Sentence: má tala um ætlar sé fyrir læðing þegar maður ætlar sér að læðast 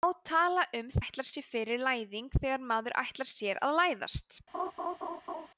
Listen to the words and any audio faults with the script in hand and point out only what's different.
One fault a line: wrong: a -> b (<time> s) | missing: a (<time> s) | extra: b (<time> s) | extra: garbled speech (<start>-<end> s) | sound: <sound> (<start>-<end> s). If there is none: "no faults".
sound: laugh (4.5-5.5 s)